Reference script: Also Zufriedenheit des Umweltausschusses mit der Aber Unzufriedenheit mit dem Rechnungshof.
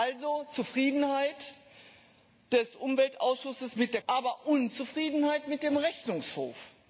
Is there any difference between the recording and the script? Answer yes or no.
no